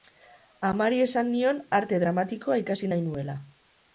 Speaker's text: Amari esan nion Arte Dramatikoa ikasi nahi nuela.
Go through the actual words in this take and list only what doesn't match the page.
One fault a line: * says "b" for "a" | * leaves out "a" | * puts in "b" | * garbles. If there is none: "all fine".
all fine